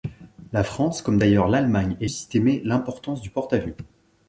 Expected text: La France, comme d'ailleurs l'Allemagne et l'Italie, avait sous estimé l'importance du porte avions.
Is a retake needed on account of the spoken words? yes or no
yes